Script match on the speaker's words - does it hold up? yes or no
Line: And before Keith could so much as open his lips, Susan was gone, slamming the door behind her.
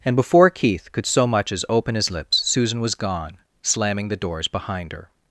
no